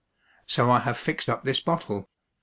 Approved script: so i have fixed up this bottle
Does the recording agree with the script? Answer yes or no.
yes